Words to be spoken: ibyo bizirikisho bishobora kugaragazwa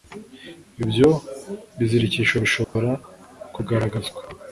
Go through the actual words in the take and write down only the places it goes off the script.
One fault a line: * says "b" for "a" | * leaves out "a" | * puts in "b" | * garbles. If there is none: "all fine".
all fine